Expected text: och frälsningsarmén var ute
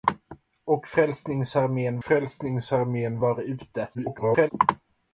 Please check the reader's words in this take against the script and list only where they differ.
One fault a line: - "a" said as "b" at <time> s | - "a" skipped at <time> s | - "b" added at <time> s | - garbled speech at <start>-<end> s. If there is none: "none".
- "frälsningsarmén" added at 2.0 s
- garbled speech at 3.9-4.5 s